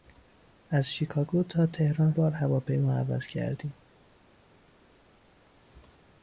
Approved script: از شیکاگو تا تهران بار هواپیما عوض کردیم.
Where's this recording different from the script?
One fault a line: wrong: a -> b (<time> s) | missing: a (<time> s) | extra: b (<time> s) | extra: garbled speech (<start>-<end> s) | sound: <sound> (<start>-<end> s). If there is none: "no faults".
no faults